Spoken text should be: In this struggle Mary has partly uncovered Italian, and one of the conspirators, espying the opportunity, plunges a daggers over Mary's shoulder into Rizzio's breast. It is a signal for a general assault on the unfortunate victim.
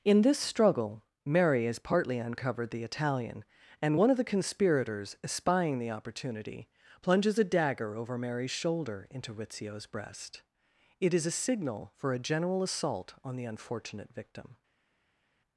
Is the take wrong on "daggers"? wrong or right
wrong